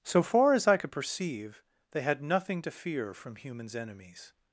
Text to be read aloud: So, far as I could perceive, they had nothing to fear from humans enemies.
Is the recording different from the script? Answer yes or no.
no